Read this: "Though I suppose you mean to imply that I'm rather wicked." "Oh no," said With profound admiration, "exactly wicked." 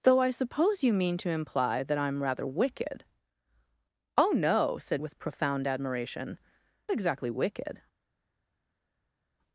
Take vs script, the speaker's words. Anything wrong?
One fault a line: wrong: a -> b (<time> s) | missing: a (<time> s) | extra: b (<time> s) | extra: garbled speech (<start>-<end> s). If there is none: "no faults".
no faults